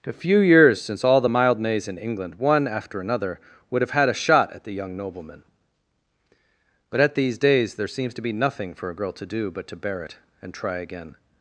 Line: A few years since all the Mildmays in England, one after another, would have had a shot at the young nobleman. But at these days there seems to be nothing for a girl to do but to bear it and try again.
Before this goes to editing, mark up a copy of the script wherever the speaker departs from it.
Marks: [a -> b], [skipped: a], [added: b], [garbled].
A few years since all the Mildmays in England, one after another, would have had a shot at the young nobleman. But at these days there seems to be nothing for a girl to do but to bear it and try again.